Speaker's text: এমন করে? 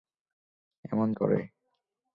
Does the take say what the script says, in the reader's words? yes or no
yes